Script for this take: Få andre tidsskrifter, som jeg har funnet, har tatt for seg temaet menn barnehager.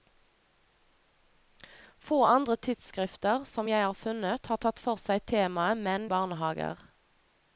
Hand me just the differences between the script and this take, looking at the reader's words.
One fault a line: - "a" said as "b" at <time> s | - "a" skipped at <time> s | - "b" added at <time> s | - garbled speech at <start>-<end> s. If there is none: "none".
none